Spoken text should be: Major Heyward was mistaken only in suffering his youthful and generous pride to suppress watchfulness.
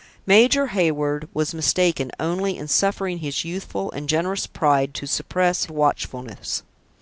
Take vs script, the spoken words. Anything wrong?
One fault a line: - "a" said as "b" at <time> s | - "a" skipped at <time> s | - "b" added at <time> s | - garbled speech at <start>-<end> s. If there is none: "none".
none